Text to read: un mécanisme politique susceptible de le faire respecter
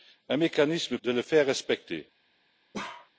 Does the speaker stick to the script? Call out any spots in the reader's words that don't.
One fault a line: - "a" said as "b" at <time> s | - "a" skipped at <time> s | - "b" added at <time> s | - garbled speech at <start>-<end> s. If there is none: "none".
- "politique susceptible" skipped at 1.0 s